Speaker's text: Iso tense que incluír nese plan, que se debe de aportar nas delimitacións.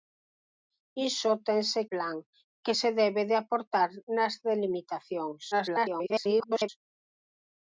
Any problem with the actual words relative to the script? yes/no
yes